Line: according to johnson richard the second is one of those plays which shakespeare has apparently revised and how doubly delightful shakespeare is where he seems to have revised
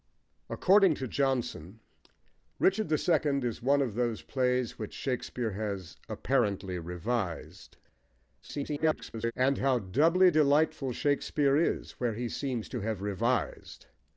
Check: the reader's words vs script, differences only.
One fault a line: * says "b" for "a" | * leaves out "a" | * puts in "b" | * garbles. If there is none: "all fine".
* garbles